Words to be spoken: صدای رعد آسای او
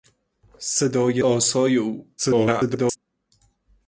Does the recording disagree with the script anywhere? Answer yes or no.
yes